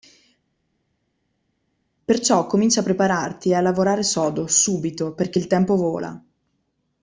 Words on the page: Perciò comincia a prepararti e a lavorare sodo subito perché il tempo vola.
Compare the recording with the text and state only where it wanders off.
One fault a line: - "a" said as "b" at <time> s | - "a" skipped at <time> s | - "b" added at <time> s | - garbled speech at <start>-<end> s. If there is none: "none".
none